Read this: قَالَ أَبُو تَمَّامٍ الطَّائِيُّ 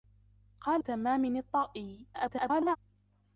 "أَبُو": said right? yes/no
no